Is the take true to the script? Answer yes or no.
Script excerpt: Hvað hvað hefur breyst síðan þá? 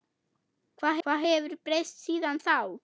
yes